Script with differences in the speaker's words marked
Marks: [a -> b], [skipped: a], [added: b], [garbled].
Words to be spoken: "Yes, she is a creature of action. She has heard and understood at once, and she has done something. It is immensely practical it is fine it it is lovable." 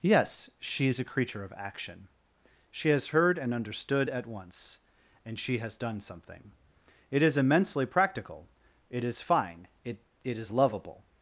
"Yes, she is a creature of action. She has heard and understood at once, and she has done something. It is immensely practical it is fine it it is lovable."